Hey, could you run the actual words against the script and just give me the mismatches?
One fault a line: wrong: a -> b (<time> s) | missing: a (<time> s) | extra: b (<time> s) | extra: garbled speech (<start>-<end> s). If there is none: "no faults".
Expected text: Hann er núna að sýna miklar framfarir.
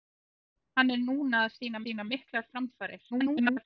extra: sýna (1.8 s)
extra: garbled speech (3.1-3.6 s)